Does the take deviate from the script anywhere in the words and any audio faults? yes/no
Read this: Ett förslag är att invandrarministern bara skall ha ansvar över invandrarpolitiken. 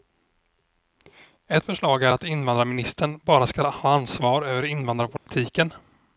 yes